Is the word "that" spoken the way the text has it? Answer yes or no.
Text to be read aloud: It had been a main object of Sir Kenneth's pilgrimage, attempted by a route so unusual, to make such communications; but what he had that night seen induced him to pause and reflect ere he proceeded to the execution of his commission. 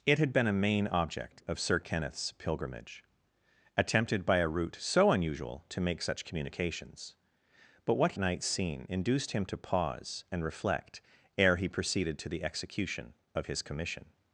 no